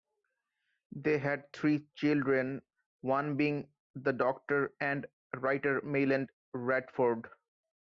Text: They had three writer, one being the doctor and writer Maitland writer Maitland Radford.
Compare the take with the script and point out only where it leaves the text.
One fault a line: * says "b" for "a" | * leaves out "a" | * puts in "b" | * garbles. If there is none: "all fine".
* says "children" for "writer"
* leaves out "writer Maitland"